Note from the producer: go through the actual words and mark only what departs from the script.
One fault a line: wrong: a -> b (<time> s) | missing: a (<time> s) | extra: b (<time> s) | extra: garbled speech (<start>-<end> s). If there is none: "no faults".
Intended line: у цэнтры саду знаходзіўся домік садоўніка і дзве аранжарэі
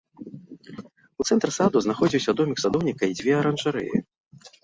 no faults